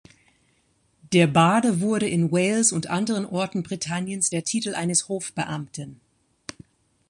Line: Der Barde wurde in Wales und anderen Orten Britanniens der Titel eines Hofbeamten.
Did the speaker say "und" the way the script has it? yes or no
yes